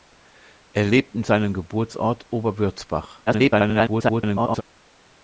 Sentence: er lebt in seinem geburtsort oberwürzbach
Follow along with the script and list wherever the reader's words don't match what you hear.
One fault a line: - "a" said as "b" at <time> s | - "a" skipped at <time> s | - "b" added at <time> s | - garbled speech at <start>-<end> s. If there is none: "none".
- garbled speech at 3.3-4.6 s